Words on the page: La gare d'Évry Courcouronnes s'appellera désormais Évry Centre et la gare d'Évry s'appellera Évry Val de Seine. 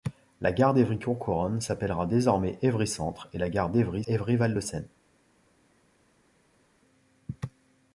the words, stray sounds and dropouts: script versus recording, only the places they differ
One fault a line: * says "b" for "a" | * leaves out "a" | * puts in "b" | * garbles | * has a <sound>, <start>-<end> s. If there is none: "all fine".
* leaves out "s'appellera"